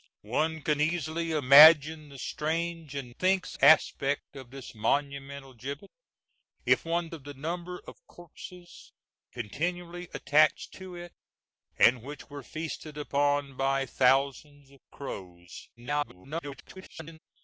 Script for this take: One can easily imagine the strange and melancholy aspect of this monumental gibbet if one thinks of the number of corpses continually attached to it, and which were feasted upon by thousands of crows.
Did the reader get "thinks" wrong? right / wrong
wrong